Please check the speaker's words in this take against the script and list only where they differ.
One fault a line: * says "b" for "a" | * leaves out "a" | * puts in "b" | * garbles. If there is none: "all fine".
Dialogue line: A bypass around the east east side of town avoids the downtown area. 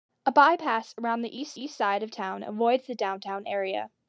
all fine